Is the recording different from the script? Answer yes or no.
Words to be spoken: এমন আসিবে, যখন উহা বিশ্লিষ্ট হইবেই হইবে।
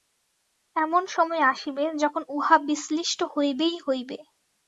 yes